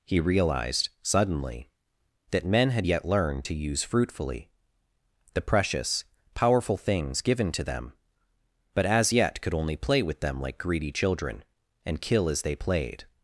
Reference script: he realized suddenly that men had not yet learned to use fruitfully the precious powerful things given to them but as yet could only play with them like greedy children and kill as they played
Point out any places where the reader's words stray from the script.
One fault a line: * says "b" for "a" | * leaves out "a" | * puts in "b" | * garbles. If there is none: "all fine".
* leaves out "not"